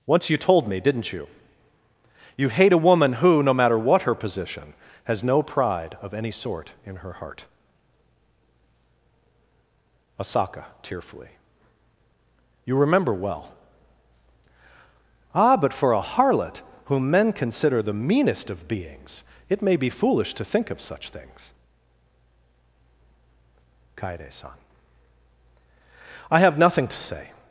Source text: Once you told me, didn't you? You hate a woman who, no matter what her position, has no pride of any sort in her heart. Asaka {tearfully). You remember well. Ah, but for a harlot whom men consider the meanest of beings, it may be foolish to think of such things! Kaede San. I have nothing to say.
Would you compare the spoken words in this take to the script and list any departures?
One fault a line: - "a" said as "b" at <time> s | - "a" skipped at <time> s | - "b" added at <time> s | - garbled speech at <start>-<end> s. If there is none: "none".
none